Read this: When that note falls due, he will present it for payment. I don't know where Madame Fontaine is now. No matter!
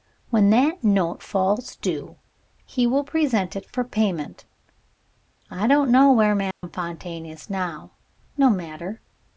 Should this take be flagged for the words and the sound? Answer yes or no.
yes